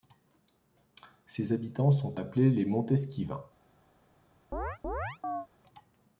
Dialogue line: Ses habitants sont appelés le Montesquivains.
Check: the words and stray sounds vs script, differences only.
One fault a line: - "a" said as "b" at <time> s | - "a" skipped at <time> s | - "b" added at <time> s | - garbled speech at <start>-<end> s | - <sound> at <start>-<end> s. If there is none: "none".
- "le" said as "les" at 2.5 s
- chirp at 4.5-5.5 s